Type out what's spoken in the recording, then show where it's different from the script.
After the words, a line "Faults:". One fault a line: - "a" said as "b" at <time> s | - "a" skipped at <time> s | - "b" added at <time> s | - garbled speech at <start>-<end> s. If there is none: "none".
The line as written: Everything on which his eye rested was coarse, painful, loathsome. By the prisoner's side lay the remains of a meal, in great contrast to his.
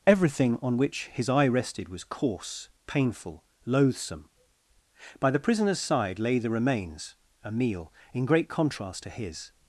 Everything on which his eye rested was coarse, painful, loathsome. By the prisoner's side lay the remains a meal, in great contrast to his.
Faults:
- "of" skipped at 7.2 s